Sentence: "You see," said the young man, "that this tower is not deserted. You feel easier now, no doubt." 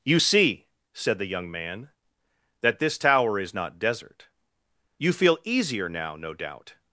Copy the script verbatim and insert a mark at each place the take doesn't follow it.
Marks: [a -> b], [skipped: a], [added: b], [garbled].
"You see," said the young man, "that this tower is not [deserted. -> desert] You feel easier now, no doubt."